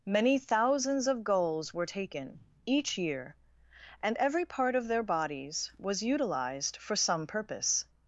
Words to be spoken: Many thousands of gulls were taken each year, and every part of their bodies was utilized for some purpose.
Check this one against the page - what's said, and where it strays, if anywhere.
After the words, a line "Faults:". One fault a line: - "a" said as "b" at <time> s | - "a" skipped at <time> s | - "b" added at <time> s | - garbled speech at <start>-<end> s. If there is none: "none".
Many thousands of gulls were taken each year, and every part of their bodies was utilized for some purpose.
Faults:
none